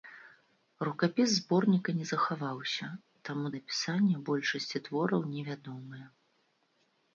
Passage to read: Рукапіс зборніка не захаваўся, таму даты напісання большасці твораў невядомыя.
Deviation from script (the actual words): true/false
true